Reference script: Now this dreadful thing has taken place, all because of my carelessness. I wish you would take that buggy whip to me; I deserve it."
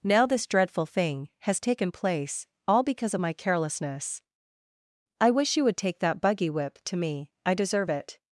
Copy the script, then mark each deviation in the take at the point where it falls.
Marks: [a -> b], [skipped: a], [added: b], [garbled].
Now this dreadful thing has taken place, all because of my carelessness. I wish you would take that buggy whip to me; I deserve it."